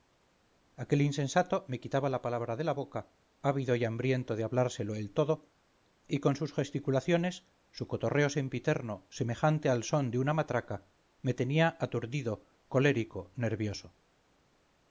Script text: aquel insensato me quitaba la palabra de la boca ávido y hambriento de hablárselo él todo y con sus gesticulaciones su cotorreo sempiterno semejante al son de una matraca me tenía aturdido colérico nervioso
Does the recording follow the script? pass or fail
pass